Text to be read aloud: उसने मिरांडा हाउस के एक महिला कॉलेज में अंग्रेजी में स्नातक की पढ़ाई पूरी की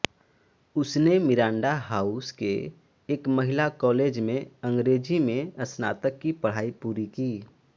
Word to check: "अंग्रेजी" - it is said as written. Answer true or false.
true